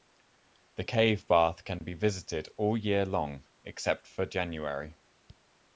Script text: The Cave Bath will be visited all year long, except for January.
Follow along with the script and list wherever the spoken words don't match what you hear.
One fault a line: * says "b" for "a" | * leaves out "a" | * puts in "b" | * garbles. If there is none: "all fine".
* says "can" for "will"